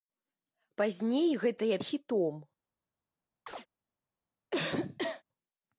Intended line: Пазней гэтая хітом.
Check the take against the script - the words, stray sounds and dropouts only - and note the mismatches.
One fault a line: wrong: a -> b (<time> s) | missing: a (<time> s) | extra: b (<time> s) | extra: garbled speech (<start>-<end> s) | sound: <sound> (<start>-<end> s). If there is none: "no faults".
sound: chirp (3.5-3.7 s)
sound: cough (4.5-5.2 s)